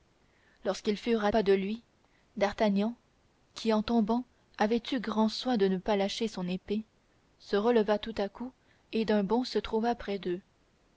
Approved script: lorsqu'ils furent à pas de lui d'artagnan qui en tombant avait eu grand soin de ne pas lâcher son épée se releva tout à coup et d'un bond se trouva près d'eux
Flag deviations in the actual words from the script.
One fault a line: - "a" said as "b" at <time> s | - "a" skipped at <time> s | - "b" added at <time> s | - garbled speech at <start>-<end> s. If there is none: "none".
none